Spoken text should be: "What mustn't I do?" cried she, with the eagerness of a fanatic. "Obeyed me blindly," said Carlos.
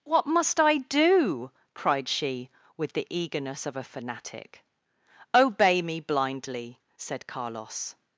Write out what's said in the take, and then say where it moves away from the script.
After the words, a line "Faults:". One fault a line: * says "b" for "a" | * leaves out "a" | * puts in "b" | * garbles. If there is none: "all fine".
"What must I do?" cried she, with the eagerness of a fanatic. "Obey me blindly," said Carlos.
Faults:
* says "must" for "mustn't"
* says "Obey" for "Obeyed"